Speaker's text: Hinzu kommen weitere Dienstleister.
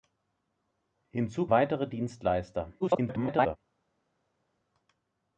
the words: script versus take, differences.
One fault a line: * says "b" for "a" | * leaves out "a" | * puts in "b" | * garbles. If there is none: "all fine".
* leaves out "kommen"
* garbles